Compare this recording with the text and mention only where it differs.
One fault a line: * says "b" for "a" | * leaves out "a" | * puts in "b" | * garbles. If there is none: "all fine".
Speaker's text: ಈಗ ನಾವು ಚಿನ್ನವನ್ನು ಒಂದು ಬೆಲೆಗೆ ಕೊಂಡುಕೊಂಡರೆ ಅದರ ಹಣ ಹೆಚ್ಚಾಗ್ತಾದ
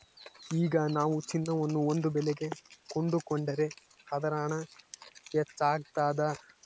all fine